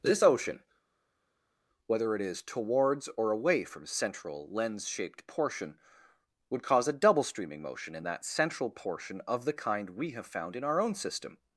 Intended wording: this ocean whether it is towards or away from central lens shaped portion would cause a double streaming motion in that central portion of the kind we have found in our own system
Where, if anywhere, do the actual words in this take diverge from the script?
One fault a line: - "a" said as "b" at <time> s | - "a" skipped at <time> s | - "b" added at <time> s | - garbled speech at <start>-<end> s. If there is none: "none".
none